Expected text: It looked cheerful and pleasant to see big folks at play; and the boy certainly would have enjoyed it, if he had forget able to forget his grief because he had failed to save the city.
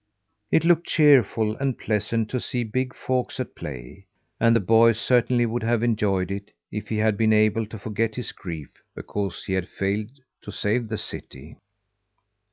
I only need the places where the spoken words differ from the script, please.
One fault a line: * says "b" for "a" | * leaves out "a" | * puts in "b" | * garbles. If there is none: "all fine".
* says "been" for "forget"